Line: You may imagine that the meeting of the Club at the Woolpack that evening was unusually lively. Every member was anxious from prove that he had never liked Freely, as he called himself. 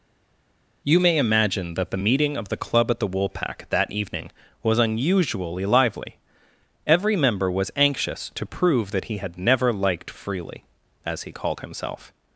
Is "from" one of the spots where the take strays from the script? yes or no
yes